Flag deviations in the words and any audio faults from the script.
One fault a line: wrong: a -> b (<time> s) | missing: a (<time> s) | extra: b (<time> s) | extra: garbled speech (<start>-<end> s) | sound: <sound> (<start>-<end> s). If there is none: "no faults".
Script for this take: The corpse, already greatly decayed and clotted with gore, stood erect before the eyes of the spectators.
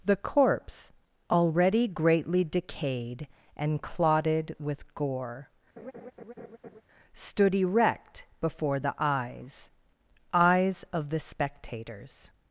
sound: laugh (5.8-6.8 s)
extra: eyes (10.3 s)